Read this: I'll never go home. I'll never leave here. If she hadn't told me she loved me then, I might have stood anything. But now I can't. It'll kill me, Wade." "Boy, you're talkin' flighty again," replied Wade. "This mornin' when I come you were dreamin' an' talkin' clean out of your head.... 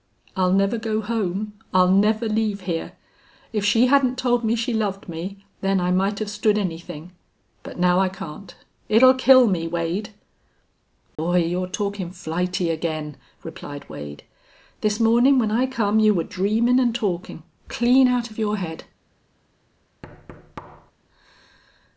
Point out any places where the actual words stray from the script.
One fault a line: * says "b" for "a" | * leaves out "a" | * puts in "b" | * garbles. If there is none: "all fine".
all fine